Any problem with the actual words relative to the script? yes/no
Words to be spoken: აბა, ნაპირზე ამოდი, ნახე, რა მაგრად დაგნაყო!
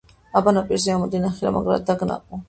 no